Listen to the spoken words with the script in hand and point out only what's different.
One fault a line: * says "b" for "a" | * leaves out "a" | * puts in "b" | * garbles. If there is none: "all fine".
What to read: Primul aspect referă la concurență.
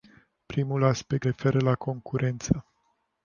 all fine